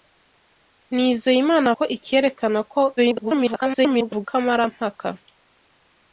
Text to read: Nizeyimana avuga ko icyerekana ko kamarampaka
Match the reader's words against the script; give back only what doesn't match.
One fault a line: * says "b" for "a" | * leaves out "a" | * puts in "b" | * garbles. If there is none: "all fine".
* leaves out "avuga"
* garbles